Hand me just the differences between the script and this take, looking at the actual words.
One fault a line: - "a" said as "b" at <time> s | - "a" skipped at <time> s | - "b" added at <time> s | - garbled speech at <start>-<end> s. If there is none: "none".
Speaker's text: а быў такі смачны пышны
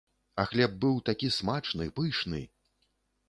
- "хлеб" added at 0.5 s